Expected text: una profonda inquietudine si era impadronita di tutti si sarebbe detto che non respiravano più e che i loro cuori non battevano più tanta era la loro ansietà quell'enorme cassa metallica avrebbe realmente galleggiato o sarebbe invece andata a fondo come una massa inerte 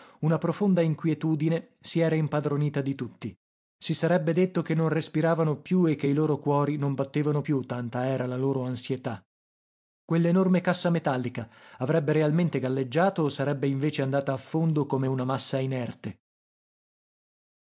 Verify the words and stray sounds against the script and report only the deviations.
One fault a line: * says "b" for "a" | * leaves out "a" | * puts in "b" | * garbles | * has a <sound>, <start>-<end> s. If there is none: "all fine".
all fine